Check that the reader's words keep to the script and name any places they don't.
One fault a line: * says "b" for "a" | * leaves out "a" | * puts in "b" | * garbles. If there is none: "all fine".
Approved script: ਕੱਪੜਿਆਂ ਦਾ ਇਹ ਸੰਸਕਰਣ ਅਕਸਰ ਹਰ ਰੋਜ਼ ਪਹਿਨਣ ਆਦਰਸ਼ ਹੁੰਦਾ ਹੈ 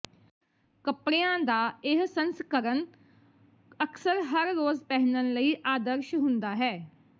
* puts in "ਲਈ"